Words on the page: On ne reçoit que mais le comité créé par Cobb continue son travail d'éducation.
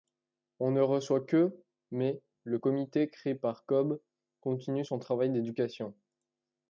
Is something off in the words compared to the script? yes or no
no